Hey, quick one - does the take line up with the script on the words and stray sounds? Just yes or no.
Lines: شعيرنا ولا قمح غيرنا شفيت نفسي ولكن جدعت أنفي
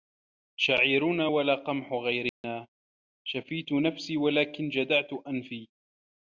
no